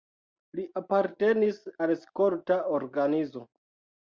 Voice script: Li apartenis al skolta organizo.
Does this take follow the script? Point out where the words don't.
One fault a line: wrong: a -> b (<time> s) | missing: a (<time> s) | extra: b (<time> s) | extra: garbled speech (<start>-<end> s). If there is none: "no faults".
no faults